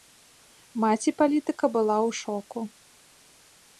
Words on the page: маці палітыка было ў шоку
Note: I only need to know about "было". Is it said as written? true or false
false